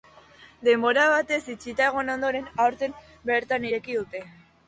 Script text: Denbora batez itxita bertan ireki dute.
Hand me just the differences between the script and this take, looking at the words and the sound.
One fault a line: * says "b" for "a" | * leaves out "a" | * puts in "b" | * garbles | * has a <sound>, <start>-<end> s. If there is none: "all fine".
* puts in "egon ondoren aurten"